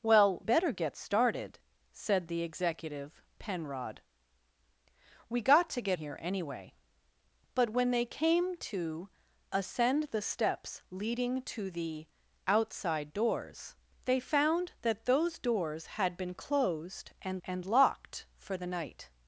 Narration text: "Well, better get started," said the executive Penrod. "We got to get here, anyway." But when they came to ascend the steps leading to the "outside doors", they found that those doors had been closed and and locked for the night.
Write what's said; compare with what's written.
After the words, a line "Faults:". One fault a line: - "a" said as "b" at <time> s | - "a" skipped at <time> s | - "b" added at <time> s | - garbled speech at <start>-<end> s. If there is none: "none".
"Well, better get started," said the executive Penrod. "We got to get here, anyway." But when they came to ascend the steps leading to the "outside doors", they found that those doors had been closed and and locked for the night.
Faults:
none